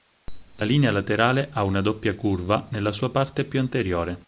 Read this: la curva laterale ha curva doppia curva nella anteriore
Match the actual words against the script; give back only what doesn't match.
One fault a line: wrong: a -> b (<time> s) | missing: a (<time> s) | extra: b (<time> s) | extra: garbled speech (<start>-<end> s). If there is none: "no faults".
wrong: curva -> linea (0.6 s)
wrong: curva -> una (1.6 s)
extra: sua parte più (2.9 s)